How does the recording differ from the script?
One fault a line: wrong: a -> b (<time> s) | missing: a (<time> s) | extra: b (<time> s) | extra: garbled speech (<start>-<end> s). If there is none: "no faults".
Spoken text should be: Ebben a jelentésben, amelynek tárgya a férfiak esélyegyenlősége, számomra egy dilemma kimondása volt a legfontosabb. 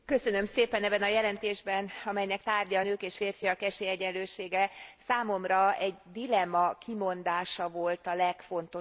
extra: nők és (2.8 s)